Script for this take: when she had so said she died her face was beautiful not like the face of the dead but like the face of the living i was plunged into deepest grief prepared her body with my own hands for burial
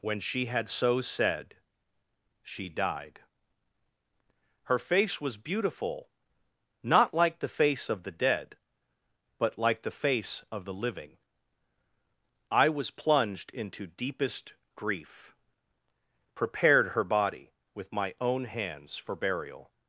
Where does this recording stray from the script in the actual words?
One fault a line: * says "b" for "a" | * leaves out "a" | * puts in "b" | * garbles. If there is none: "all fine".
all fine